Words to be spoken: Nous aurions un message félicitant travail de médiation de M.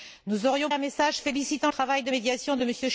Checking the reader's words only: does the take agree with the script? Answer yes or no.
yes